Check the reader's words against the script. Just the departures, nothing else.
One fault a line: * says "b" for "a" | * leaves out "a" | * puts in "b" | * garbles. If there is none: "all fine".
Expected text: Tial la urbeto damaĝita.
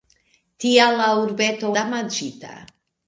all fine